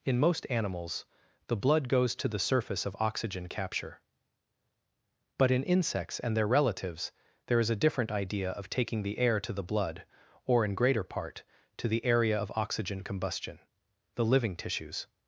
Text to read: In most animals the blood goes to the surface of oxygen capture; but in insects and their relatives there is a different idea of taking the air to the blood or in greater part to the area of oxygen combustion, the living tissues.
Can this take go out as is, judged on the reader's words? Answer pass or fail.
pass